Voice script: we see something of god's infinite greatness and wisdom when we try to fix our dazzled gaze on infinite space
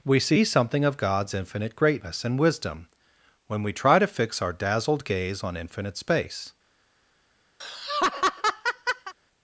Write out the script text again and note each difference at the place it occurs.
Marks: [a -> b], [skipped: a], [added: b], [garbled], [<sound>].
we see something of god's infinite greatness and wisdom when we try to fix our dazzled gaze on infinite space [laugh]